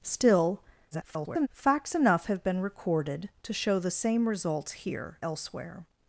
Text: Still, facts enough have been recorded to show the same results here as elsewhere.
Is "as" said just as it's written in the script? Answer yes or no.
no